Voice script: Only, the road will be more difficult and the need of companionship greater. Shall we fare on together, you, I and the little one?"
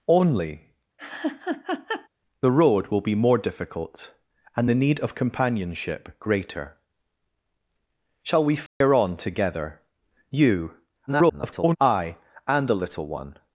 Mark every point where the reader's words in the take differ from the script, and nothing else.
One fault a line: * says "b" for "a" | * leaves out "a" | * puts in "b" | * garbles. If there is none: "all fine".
* garbles